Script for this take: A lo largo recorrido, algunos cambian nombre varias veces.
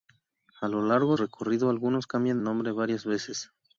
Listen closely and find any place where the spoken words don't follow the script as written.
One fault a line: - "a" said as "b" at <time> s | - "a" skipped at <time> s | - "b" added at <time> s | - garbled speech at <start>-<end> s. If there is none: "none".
none